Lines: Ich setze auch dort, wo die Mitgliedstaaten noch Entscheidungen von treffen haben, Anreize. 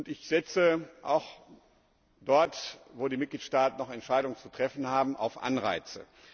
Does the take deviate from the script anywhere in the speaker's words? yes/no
yes